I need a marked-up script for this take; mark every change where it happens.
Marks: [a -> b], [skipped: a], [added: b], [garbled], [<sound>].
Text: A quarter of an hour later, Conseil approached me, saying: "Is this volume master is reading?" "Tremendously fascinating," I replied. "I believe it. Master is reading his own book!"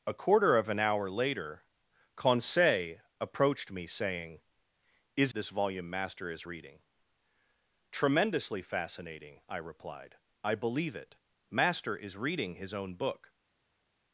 A quarter of an hour later, Conseil approached me, saying: "Is this volume master is reading?" "Tremendously fascinating," I replied. "I believe it. Master is reading his own book!"